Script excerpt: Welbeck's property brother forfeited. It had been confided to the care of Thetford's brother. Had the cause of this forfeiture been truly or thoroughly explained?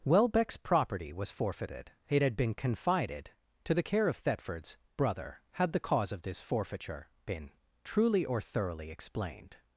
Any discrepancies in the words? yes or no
yes